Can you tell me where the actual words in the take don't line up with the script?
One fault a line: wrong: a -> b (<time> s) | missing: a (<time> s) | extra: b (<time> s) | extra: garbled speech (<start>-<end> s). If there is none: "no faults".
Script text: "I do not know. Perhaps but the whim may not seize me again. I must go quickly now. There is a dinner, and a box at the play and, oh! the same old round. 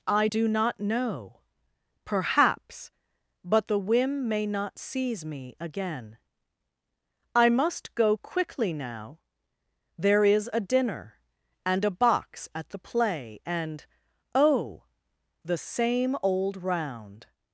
no faults